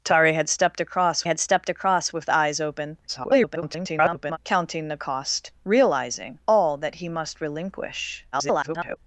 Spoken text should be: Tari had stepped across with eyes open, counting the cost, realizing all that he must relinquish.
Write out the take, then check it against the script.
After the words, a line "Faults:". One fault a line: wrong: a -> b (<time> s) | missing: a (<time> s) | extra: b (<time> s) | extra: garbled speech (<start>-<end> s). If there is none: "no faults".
Tari had stepped across had stepped across with eyes open, [garbled] counting the cost, realizing all that he must relinquish. [garbled]
Faults:
extra: had stepped across (1.2 s)
extra: garbled speech (3.1-4.4 s)
extra: garbled speech (8.3-9.0 s)